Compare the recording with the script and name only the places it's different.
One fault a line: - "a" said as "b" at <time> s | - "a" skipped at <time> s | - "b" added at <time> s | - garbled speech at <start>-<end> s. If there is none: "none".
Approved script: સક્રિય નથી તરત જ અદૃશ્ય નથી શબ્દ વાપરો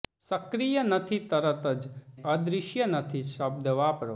none